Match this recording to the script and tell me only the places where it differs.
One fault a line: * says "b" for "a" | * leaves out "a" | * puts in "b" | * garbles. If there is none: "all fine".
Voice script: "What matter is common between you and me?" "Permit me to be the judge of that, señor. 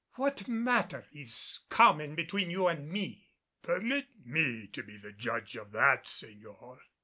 all fine